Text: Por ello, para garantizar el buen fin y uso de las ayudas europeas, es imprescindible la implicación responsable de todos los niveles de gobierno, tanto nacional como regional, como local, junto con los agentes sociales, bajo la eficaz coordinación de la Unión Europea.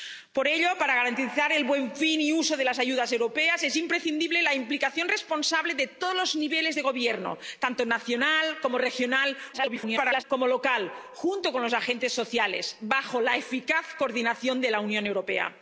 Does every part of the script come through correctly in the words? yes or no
no